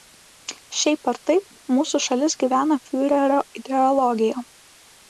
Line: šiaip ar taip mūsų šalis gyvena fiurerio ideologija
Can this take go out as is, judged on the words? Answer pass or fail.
pass